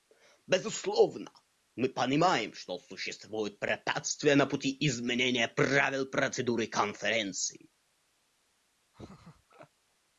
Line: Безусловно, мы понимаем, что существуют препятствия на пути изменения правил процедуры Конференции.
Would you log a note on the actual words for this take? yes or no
no